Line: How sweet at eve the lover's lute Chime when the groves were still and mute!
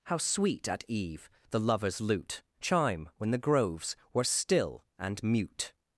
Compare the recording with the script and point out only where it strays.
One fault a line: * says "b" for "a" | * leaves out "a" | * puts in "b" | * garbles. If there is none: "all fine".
all fine